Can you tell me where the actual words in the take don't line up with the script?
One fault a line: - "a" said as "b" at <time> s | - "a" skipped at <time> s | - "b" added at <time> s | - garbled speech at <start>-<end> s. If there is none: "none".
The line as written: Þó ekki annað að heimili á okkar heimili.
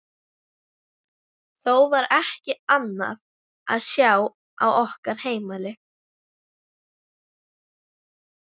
- "var" added at 1.9 s
- "heimili" said as "sjá" at 3.9 s